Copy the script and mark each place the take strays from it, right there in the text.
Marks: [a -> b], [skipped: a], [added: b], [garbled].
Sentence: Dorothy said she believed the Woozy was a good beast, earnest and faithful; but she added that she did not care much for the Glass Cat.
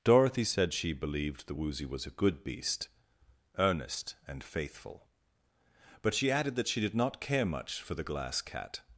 Dorothy said she believed the Woozy was a good beast, earnest and faithful; but she added that she did not care much for the Glass Cat.